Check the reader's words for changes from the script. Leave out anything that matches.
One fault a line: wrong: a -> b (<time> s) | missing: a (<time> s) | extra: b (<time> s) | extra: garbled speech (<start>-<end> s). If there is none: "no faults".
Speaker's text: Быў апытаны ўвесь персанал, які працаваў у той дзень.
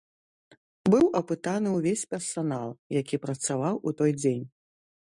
no faults